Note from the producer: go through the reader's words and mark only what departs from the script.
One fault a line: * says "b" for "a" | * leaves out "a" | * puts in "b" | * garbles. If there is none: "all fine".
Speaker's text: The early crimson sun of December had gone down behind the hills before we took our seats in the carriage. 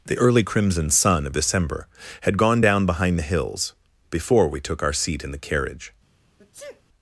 * says "seat" for "seats"